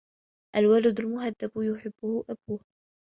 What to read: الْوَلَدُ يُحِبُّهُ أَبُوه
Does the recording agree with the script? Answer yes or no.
no